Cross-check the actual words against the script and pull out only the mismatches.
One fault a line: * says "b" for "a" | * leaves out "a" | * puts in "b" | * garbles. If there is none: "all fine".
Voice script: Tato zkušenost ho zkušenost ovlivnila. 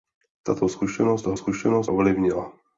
all fine